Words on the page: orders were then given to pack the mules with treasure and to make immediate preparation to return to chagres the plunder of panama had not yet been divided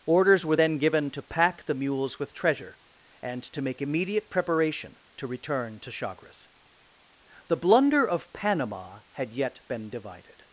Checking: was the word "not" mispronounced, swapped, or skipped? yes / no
yes